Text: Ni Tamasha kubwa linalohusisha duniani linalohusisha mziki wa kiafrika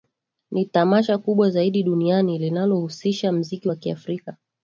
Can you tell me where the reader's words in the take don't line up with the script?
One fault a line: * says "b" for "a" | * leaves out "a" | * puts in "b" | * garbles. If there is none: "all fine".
* says "zaidi" for "linalohusisha"